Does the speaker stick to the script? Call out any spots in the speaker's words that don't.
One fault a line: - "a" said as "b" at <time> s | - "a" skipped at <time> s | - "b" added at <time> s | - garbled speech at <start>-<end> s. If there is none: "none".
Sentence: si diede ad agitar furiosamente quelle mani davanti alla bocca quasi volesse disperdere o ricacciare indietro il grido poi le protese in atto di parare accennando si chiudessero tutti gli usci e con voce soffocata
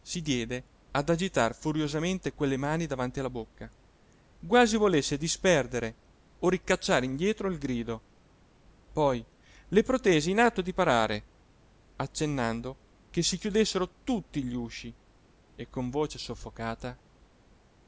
- "che" added at 13.1 s